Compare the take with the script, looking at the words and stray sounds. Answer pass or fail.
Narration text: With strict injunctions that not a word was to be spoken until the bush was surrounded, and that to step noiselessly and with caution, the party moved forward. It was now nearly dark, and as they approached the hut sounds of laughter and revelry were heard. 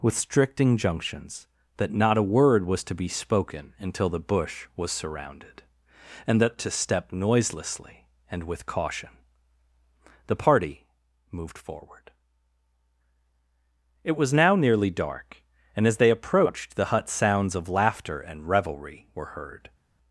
pass